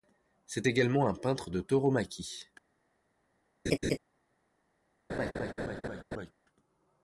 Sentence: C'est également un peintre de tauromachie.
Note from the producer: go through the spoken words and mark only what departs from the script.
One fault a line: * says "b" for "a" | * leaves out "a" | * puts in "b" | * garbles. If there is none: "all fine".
all fine